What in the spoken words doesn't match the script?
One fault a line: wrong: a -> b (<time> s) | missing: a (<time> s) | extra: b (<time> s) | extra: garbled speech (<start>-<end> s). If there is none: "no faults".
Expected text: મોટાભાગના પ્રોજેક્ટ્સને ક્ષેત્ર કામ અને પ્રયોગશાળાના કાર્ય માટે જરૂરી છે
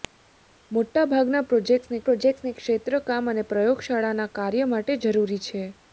extra: પ્રોજેક્ટ્સને (2.0 s)